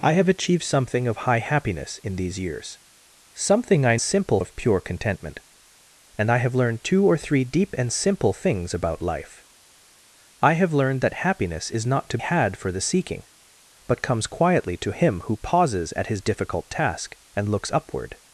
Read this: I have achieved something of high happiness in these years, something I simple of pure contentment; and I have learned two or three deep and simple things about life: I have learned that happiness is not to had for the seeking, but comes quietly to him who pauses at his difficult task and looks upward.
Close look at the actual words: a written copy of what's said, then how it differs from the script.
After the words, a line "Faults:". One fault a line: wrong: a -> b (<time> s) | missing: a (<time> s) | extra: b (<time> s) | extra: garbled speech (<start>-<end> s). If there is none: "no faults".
I have achieved something of high happiness in these years, something I simple of pure contentment; and I have learned two or three deep and simple things about life: I have learned that happiness is not to had for the seeking, but comes quietly to him who pauses at his difficult task and looks upward.
Faults:
no faults